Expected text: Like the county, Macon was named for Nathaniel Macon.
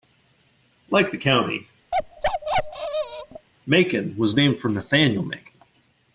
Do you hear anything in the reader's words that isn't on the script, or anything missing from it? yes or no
no